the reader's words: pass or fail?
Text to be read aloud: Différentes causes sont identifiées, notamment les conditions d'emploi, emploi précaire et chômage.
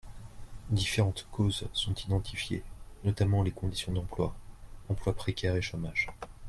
pass